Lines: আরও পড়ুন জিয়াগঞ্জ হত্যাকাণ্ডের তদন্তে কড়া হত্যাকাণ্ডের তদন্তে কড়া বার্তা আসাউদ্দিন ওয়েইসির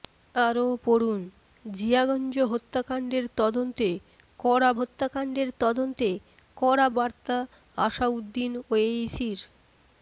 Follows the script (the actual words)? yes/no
yes